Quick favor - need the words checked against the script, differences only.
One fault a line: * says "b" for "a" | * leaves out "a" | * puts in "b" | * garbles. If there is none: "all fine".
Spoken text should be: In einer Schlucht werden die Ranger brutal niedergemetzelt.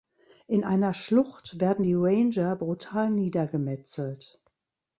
all fine